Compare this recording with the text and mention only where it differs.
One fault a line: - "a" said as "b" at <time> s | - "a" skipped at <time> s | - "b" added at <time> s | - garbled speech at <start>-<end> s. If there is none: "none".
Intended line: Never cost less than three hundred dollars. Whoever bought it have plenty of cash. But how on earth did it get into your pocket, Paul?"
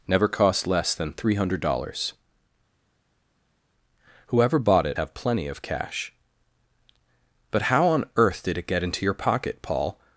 none